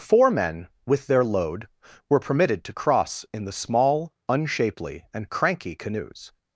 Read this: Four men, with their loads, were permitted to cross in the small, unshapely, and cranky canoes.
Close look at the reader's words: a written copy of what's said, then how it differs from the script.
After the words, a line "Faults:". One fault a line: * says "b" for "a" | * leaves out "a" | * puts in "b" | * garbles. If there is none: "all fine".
Four men, with their load, were permitted to cross in the small, unshapely, and cranky canoes.
Faults:
* says "load" for "loads"